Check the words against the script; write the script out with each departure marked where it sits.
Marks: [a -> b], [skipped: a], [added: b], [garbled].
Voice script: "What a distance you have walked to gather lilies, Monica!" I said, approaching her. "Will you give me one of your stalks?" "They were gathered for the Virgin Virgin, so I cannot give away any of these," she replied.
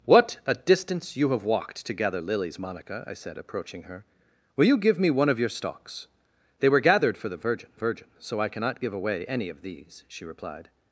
"What a distance you have walked to gather lilies, Monica!" I said, approaching her. "Will you give me one of your stalks?" "They were gathered for the Virgin Virgin, so I cannot give away any of these," she replied.